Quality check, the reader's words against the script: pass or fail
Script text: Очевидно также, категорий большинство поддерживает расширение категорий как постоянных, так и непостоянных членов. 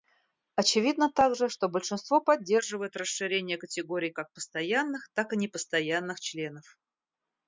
fail